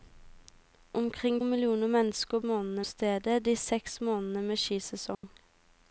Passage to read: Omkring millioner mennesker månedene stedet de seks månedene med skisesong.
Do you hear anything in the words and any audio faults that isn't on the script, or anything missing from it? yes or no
yes